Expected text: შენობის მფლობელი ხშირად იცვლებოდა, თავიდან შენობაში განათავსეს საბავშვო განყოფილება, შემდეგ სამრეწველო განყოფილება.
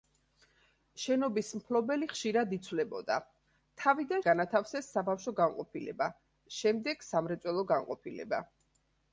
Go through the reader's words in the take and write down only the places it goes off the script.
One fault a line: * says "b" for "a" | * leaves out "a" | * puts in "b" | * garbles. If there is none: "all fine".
* leaves out "შენობაში"